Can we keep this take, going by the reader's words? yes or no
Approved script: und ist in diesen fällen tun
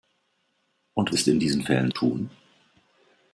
yes